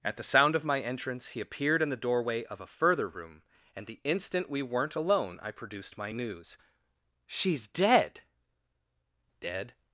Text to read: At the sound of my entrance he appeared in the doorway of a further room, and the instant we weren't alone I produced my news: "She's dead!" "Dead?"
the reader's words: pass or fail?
pass